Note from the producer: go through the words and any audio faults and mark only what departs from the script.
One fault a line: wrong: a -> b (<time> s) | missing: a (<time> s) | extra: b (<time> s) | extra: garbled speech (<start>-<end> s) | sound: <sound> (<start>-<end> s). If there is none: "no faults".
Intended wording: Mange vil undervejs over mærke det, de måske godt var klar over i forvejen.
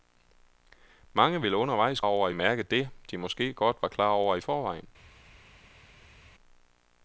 no faults